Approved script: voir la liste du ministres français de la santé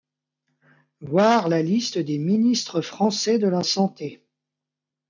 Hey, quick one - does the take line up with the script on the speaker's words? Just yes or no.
no